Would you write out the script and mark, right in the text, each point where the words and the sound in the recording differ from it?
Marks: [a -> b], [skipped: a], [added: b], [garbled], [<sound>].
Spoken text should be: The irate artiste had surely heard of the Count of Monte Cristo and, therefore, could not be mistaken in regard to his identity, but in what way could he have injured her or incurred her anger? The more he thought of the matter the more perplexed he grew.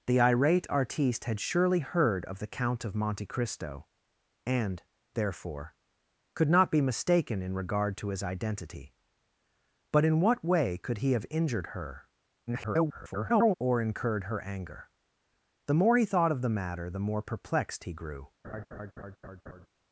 The irate artiste had surely heard of the Count of Monte Cristo and, therefore, could not be mistaken in regard to his identity, but in what way could he have injured her [garbled] or incurred her anger? The more he thought of the matter the more perplexed he grew. [laugh]